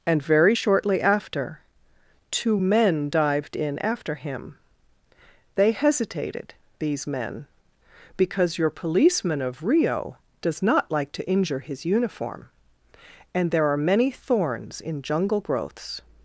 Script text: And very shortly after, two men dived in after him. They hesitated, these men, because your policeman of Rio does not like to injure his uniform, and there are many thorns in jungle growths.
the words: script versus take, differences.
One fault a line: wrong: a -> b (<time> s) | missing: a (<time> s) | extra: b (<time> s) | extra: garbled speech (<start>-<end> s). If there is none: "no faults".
no faults